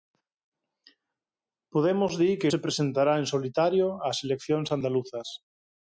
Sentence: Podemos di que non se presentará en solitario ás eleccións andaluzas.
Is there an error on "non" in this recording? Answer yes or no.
yes